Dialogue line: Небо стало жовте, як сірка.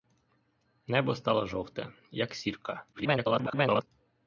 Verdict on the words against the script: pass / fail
fail